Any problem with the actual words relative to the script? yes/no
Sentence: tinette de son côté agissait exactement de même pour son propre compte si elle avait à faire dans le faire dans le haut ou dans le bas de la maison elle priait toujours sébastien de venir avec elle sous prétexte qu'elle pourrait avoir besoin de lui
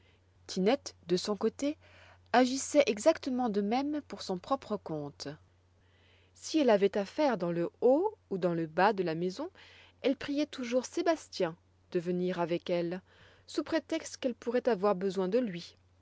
yes